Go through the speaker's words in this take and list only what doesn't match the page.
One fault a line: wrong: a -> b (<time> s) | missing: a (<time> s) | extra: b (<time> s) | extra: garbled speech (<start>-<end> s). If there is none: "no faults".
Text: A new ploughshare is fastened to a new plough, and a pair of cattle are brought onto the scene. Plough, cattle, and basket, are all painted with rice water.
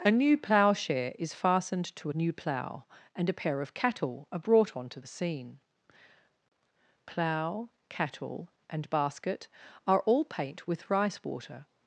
wrong: painted -> paint (10.2 s)